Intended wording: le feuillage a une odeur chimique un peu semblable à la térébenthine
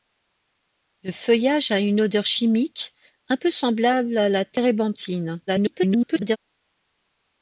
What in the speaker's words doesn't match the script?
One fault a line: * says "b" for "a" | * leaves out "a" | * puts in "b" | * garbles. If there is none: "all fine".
* garbles